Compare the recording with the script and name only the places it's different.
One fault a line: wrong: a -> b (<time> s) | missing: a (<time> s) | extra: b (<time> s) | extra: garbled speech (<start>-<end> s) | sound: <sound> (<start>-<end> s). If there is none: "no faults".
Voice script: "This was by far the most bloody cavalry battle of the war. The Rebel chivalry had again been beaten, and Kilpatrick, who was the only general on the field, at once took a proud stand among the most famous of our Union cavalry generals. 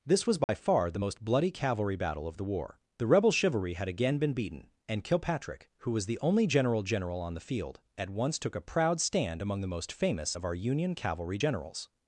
sound: dropout (0.4-0.5 s)
extra: general (6.8 s)